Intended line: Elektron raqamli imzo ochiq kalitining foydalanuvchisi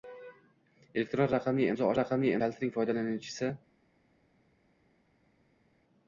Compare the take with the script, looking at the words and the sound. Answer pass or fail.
fail